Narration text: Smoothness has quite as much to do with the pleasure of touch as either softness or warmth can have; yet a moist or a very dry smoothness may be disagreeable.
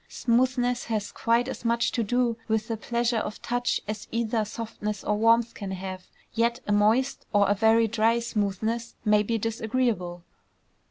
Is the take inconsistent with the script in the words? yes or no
no